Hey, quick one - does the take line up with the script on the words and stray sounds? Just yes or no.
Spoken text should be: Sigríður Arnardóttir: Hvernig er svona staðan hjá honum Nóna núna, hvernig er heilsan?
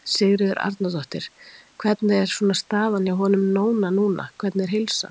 yes